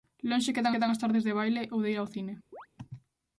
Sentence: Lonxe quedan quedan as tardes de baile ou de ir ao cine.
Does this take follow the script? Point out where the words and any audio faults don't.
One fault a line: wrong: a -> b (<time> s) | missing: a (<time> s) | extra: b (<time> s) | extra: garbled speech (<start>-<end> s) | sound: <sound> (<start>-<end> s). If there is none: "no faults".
sound: chirp (2.5-2.7 s)